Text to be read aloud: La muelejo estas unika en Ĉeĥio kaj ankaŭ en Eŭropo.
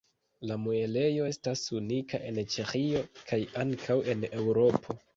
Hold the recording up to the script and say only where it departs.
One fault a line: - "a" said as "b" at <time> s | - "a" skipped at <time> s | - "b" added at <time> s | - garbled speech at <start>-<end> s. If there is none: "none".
none